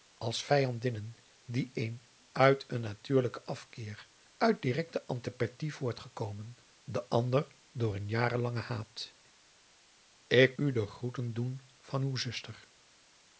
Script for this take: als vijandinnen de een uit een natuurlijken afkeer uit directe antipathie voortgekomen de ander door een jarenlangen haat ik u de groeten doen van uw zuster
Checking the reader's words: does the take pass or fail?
pass